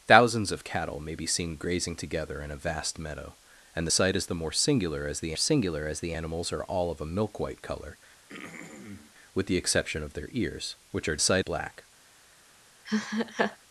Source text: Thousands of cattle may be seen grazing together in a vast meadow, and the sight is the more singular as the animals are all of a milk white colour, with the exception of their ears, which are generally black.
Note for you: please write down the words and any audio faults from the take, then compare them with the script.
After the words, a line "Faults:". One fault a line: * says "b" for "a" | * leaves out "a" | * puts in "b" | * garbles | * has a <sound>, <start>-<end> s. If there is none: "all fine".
Thousands of cattle may be seen grazing together in a vast meadow, and the sight is the more singular as the singular as the animals are all of a milk white colour, with the exception of their ears, which are sight black.
Faults:
* puts in "singular as the"
* has a throat clearing, 8.3-9.1 s
* says "sight" for "generally"
* has a laugh, 12.9-13.6 s